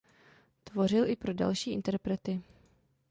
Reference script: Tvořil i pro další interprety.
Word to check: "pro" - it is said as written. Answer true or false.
true